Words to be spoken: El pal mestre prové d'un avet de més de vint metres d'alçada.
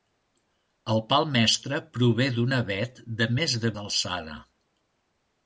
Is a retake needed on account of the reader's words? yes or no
yes